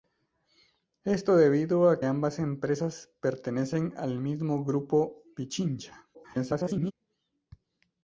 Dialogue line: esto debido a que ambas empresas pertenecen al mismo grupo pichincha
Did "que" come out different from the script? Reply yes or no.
yes